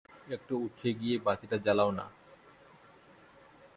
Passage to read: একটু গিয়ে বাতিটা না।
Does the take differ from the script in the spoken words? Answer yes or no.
yes